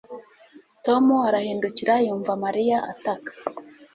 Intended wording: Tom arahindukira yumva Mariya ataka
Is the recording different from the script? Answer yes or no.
no